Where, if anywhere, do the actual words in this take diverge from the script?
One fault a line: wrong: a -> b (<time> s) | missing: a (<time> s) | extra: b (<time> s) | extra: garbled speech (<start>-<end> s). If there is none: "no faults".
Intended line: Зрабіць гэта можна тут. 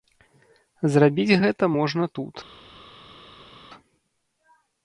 no faults